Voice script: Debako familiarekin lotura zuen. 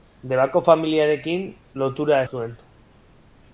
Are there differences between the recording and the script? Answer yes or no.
no